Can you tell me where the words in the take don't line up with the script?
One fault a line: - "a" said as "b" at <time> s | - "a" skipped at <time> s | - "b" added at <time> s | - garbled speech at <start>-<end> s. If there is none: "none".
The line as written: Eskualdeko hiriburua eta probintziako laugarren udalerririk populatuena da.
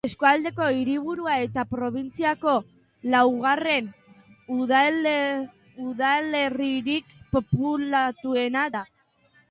none